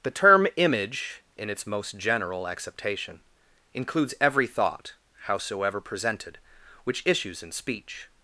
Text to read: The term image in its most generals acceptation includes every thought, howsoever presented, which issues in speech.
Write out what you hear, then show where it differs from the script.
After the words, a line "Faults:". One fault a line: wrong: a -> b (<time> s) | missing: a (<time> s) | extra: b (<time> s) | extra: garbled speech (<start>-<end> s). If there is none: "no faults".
The term image in its most general acceptation includes every thought, howsoever presented, which issues in speech.
Faults:
wrong: generals -> general (2.0 s)